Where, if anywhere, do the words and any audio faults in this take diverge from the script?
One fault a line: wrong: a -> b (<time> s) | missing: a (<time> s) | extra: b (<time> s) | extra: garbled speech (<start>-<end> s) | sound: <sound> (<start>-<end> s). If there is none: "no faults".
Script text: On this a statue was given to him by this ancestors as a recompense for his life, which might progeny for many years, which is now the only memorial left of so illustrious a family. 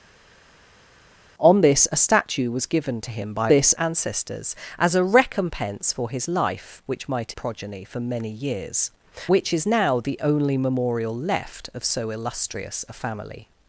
no faults